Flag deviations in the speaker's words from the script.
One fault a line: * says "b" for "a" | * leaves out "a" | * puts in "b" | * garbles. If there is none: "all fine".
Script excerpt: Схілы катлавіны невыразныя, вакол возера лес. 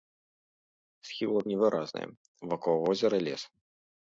* leaves out "катлавіны"